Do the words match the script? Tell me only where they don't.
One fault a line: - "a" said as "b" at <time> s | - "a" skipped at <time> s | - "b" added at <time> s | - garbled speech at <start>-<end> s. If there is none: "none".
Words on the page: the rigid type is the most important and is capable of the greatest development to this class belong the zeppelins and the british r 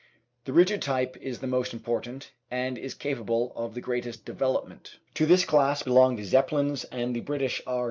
none